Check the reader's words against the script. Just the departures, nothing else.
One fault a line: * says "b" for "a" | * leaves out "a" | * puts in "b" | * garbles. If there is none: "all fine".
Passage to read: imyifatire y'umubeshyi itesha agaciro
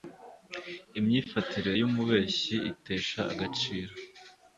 all fine